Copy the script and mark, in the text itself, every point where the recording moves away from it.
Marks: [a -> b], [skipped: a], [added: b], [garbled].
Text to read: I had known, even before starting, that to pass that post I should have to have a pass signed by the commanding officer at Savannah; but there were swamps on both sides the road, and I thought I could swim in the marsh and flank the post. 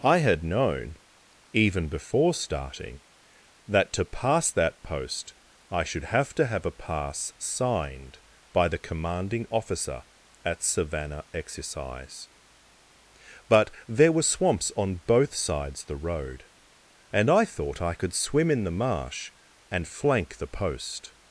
I had known, even before starting, that to pass that post I should have to have a pass signed by the commanding officer at Savannah; [added: exercise] but there were swamps on both sides the road, and I thought I could swim in the marsh and flank the post.